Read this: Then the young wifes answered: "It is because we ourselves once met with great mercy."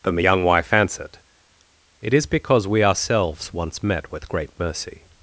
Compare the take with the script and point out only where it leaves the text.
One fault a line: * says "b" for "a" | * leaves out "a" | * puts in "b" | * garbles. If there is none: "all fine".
* says "wife" for "wifes"